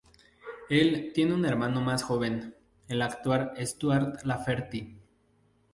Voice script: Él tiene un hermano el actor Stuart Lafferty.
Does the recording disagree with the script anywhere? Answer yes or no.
yes